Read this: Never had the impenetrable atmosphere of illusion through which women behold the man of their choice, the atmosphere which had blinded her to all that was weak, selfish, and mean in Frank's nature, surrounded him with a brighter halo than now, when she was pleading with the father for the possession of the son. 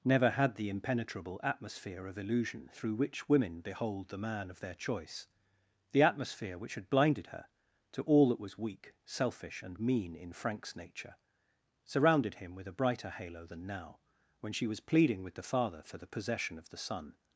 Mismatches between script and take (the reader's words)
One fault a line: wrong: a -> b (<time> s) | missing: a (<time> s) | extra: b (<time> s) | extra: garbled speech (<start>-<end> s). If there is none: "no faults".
no faults